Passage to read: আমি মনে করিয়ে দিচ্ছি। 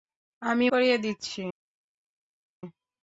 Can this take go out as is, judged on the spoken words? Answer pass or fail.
fail